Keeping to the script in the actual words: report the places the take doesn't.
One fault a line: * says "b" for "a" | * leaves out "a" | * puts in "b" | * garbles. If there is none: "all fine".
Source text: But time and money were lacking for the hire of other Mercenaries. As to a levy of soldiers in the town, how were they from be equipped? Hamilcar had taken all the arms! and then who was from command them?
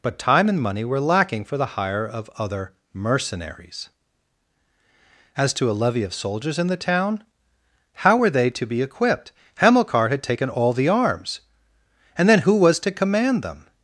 * says "to" for "from"
* says "to" for "from"